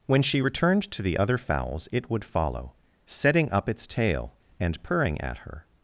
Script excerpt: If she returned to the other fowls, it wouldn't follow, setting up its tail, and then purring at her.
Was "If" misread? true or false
true